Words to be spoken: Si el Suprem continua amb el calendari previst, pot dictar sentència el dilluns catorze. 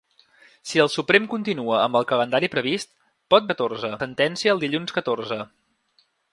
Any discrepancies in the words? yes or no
yes